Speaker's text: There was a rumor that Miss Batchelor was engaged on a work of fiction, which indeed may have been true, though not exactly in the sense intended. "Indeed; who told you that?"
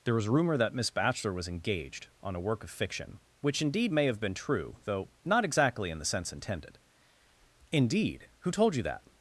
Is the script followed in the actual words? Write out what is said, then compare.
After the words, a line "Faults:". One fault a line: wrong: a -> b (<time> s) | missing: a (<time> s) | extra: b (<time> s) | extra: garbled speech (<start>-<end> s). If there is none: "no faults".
There was rumor that Miss Batchelor was engaged on a work of fiction, which indeed may have been true, though not exactly in the sense intended. "Indeed; who told you that?"
Faults:
missing: a (0.3 s)